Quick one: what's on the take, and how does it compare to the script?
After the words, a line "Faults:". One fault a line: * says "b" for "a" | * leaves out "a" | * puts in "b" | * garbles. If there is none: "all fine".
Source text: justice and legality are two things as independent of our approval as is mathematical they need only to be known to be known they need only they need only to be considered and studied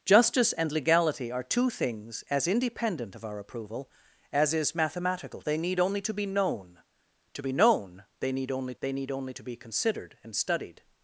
justice and legality are two things as independent of our approval as is mathematical they need only to be known to be known they need only they need only to be considered and studied
Faults:
all fine